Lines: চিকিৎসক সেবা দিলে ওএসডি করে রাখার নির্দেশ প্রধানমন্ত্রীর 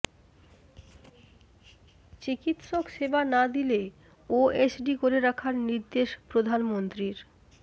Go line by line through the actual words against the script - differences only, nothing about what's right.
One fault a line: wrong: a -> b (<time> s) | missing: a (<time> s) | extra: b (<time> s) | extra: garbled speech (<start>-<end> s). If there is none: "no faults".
extra: না (3.3 s)